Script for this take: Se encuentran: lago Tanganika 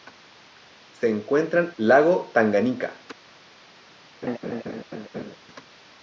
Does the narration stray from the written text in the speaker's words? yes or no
no